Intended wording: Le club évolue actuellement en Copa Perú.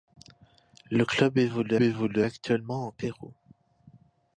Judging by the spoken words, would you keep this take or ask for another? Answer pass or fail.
fail